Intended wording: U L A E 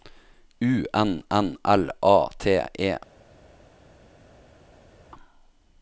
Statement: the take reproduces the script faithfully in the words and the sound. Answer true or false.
false